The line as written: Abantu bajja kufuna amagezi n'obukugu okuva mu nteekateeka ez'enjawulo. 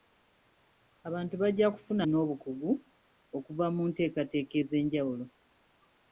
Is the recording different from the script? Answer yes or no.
yes